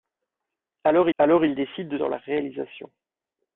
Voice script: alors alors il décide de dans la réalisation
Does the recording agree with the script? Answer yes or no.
yes